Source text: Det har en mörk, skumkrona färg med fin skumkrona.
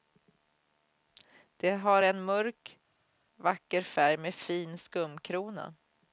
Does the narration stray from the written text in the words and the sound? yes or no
yes